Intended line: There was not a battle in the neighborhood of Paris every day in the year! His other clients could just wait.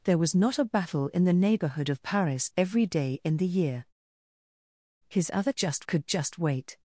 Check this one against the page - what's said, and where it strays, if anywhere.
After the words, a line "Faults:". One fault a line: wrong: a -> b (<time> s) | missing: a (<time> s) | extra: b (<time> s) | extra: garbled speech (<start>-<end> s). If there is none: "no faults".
There was not a battle in the neighborhood of Paris every day in the year! His other just could just wait.
Faults:
wrong: clients -> just (5.6 s)